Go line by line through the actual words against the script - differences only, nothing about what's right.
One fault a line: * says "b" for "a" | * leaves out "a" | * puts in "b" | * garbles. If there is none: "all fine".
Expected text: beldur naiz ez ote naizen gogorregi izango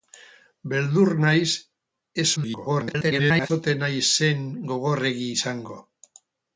* garbles